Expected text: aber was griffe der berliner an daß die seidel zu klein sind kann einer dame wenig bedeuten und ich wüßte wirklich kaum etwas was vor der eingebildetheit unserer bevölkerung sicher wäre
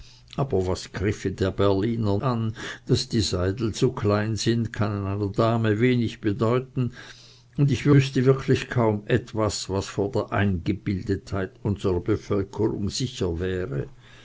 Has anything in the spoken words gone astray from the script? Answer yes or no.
no